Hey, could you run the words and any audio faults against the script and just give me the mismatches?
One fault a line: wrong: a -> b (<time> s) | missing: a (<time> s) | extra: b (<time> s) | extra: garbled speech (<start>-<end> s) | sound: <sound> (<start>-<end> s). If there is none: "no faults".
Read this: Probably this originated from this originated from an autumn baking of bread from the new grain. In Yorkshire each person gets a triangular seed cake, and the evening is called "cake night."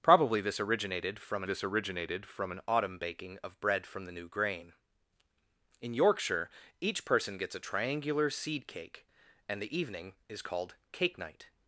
no faults